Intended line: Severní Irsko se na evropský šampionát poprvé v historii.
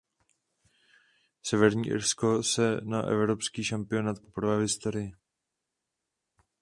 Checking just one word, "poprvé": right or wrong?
right